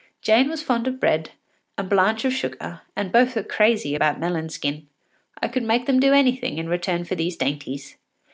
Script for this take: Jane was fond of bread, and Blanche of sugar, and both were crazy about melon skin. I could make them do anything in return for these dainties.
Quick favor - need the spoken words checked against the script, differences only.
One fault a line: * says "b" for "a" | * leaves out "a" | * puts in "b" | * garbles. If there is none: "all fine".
all fine